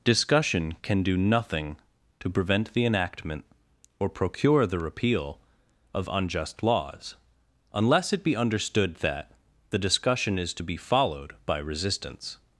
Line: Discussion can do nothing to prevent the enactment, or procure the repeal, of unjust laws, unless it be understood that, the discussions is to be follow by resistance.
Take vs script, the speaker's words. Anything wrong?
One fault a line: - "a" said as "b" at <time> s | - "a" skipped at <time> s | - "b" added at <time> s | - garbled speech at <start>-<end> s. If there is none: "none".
- "discussions" said as "discussion" at 9.8 s
- "follow" said as "followed" at 10.8 s